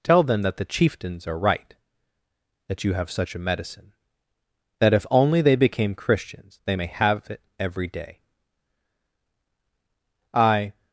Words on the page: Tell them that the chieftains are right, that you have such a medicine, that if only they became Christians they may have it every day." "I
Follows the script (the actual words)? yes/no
yes